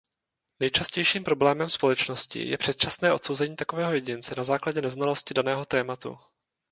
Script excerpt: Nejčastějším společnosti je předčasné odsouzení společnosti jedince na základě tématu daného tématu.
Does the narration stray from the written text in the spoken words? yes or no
yes